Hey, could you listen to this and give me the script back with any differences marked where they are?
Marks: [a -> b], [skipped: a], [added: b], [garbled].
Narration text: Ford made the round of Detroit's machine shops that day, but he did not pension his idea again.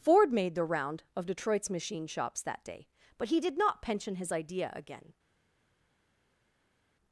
Ford made the round of Detroit's machine shops that day, but he did not pension his idea again.